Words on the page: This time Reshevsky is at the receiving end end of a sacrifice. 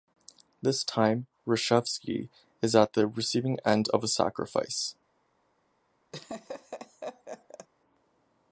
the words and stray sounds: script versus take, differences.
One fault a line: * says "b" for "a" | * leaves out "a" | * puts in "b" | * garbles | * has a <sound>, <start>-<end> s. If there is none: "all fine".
* leaves out "end"
* has a laugh, 6.1-7.7 s